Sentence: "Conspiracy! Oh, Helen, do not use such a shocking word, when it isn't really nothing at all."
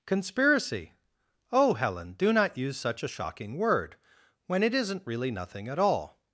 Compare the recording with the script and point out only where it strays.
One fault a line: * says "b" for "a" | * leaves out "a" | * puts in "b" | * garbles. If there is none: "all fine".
all fine